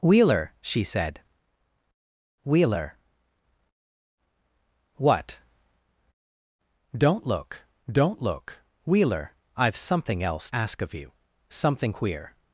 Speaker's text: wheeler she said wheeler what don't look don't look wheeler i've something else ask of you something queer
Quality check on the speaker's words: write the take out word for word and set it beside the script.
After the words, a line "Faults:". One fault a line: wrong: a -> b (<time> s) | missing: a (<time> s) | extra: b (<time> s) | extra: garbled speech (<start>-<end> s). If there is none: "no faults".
wheeler she said wheeler what don't look don't look wheeler i've something else ask of you something queer
Faults:
no faults